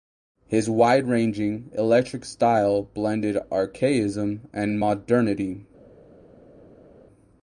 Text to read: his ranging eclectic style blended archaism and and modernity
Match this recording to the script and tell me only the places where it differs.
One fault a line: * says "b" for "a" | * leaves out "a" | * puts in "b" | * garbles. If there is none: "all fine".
* puts in "wide"
* leaves out "and"